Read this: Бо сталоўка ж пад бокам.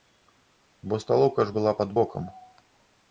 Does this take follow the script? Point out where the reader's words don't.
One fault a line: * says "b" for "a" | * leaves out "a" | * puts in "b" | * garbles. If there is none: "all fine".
* puts in "была"